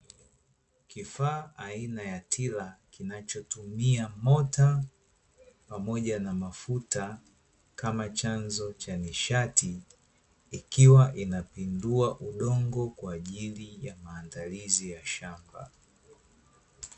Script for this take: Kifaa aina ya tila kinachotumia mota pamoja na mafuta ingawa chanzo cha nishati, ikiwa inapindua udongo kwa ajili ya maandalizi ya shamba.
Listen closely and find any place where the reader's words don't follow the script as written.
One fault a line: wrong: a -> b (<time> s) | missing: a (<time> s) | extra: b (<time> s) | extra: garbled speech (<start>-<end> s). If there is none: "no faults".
wrong: ingawa -> kama (7.8 s)